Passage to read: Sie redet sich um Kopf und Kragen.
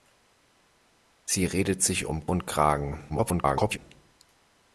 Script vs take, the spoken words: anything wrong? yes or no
yes